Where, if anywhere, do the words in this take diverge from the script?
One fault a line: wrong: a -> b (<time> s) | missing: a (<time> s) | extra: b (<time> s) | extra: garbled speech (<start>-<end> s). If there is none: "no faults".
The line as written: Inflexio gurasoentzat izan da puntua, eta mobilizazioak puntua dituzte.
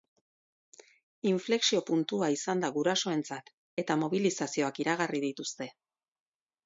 wrong: gurasoentzat -> puntua (1.9 s)
wrong: puntua -> gurasoentzat (2.8 s)
wrong: puntua -> iragarri (4.8 s)